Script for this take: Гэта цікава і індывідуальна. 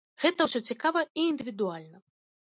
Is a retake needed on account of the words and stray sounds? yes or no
yes